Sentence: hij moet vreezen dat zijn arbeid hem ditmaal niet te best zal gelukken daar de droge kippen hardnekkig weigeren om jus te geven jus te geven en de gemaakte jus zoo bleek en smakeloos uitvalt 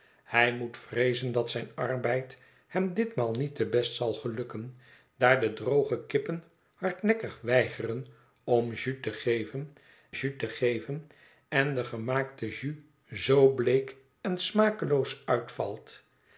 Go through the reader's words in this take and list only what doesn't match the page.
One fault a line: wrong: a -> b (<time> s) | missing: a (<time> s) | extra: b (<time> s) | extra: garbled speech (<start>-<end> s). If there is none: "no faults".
no faults